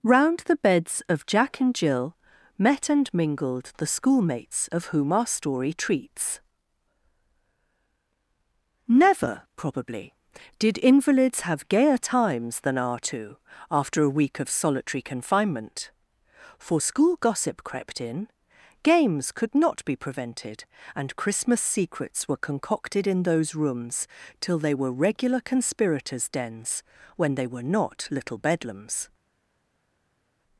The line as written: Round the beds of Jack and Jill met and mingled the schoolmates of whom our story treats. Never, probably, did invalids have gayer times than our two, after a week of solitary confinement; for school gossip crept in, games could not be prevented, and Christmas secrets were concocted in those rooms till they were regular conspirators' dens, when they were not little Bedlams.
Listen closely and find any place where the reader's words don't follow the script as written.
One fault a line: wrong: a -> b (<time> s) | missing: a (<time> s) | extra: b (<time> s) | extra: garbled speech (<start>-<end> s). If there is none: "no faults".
no faults